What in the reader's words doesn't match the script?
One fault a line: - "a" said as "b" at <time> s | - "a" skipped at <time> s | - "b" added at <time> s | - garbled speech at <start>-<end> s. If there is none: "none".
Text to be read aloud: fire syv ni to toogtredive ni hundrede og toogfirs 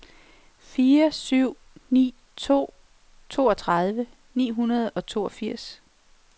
none